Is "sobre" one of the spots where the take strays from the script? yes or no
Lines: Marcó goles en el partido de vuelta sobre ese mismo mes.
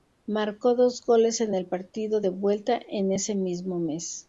yes